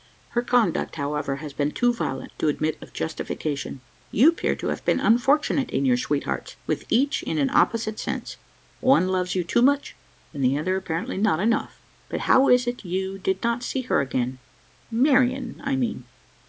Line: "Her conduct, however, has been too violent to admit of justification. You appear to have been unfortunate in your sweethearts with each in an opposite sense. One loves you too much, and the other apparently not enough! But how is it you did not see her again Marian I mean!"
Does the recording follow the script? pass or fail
pass